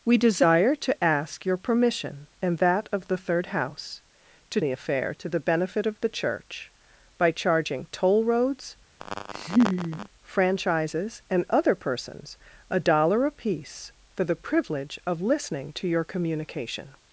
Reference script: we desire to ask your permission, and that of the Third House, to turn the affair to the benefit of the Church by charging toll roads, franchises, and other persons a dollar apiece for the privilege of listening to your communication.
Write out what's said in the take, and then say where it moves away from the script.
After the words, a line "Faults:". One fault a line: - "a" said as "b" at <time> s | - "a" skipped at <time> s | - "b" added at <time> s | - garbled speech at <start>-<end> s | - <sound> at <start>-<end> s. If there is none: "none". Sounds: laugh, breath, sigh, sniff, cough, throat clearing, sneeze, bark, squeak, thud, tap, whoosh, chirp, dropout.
we desire to ask your permission, and that of the Third House, to the affair to the benefit of the Church by charging toll roads, franchises, and other persons a dollar apiece for the privilege of listening to your communication.
Faults:
- "turn" skipped at 4.6 s
- laugh at 9.0-10.1 s